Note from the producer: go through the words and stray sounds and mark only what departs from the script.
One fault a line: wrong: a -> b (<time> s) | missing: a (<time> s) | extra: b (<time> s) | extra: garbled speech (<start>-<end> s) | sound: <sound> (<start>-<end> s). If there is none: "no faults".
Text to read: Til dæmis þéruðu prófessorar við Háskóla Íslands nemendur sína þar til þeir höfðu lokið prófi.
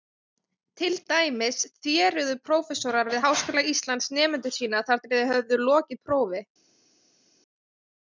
no faults